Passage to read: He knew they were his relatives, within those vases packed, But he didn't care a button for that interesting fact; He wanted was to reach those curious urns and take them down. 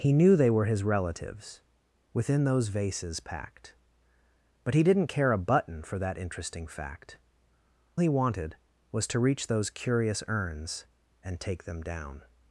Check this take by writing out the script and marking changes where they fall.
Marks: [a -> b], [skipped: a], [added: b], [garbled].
He knew they were his relatives, within those vases packed, But he didn't care a button for that interesting fact; He wanted was to reach those curious urns and take them down.